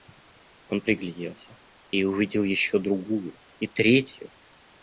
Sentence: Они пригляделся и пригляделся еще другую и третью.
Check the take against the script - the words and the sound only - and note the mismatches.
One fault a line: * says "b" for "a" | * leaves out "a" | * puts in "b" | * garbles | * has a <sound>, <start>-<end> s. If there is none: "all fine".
* says "Он" for "Они"
* says "увидел" for "пригляделся"